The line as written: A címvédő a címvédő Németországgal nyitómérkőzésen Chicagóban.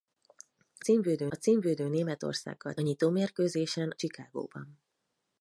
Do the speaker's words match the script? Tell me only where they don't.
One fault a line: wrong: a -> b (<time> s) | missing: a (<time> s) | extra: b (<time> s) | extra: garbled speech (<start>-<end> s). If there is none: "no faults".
no faults